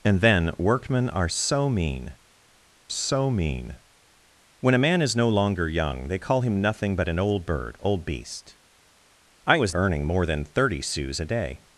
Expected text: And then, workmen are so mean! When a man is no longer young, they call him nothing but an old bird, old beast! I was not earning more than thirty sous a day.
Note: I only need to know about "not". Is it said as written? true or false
false